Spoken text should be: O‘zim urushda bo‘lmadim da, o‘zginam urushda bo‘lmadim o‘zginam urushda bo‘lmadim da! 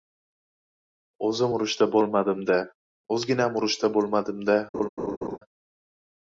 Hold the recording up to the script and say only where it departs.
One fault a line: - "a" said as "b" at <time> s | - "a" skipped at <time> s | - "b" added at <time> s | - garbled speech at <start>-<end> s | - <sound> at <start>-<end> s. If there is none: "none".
- "o‘zginam urushda bo‘lmadim" skipped at 4.5 s
- laugh at 4.7-5.4 s